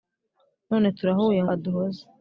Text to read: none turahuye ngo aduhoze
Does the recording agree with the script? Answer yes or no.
no